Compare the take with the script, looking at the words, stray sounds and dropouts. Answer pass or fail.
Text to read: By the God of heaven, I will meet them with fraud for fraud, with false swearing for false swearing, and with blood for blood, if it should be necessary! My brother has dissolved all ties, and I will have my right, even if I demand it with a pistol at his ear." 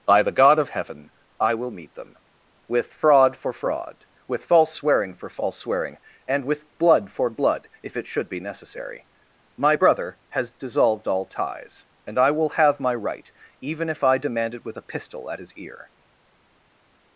pass